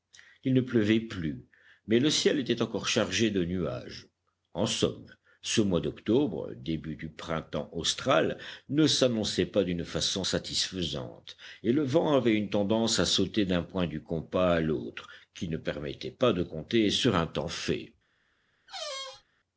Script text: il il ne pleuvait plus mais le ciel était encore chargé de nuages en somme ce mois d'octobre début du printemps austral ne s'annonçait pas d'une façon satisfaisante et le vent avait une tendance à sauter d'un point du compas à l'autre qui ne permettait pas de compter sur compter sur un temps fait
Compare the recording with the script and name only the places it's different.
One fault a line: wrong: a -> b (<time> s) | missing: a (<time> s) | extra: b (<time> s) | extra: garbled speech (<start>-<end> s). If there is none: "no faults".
missing: il (0.6 s)
missing: compter sur (17.2 s)